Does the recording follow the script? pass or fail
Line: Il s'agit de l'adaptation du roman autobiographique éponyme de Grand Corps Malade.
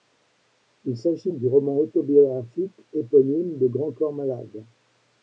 fail